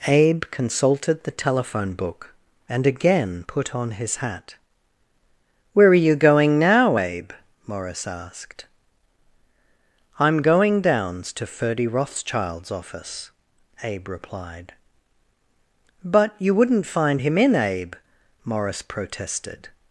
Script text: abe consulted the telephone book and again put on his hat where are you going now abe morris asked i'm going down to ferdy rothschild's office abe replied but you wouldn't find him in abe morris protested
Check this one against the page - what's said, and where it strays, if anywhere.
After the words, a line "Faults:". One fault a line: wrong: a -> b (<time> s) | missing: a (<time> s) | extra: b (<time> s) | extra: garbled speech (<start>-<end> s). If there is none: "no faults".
abe consulted the telephone book and again put on his hat where are you going now abe morris asked i'm going downs to ferdy rothschild's office abe replied but you wouldn't find him in abe morris protested
Faults:
wrong: down -> downs (10.8 s)